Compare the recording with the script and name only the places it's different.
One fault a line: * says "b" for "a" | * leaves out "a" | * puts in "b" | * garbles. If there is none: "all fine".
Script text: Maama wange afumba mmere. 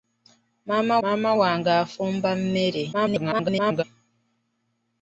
* puts in "maama"
* garbles